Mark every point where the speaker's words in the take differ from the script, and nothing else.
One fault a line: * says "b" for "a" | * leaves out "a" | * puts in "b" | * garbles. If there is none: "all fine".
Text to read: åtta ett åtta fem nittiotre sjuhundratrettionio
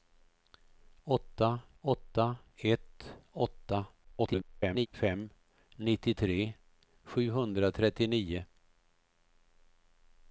* puts in "åtta"
* garbles